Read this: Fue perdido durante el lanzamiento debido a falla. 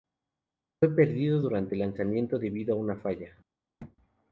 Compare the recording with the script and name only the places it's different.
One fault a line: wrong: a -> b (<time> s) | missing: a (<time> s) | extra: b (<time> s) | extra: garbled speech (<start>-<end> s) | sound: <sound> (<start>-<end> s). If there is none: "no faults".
extra: una (2.8 s)
sound: thud (3.8-4.0 s)